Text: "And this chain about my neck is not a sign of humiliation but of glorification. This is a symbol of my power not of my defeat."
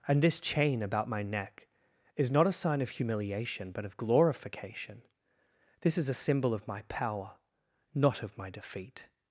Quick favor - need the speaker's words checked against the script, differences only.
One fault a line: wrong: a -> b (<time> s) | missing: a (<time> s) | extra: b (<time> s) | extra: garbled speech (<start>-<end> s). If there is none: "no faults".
no faults